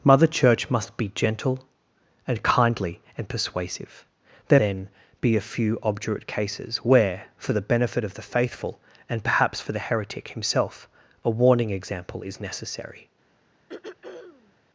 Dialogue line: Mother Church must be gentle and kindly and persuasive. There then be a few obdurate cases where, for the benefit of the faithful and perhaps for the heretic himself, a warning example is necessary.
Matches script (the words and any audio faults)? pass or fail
fail